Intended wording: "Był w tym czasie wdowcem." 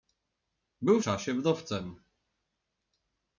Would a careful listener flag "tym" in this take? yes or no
yes